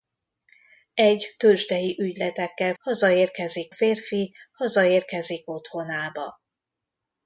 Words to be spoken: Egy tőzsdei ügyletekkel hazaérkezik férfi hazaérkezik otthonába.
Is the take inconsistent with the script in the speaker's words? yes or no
no